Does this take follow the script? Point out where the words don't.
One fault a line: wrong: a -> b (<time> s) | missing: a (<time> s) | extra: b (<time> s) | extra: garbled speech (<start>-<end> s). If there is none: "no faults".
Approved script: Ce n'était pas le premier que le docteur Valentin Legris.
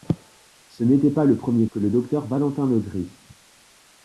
no faults